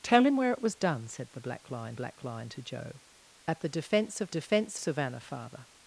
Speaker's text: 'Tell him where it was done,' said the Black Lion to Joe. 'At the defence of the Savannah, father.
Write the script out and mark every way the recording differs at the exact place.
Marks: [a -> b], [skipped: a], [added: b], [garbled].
'Tell him where it was done,' said the Black Lion [added: Black Lion] to Joe. 'At the defence of [the -> defence] Savannah, father.